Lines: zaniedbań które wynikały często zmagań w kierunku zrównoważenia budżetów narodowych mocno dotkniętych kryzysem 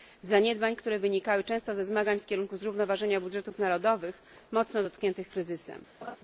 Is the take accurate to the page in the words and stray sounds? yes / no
no